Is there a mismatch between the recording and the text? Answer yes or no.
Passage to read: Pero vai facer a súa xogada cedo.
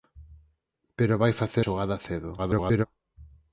yes